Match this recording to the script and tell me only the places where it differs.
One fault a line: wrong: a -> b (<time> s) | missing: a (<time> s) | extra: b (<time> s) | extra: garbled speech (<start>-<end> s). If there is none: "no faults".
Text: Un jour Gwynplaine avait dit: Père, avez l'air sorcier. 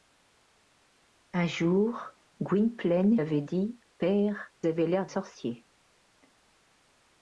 no faults